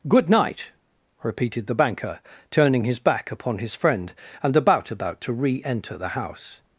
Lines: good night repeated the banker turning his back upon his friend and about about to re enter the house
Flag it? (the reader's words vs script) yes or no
no